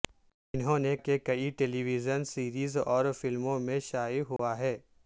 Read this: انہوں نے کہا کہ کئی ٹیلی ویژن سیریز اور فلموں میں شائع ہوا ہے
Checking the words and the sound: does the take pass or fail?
fail